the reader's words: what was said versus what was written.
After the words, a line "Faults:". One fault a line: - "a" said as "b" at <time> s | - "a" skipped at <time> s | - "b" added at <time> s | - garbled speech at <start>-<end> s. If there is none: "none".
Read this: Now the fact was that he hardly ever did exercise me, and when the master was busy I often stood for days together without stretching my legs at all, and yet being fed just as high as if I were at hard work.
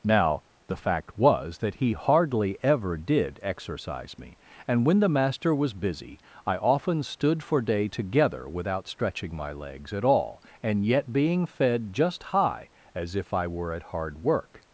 Now the fact was that he hardly ever did exercise me, and when the master was busy I often stood for day together without stretching my legs at all, and yet being fed just high as if I were at hard work.
Faults:
- "days" said as "day" at 7.6 s
- "as" skipped at 12.2 s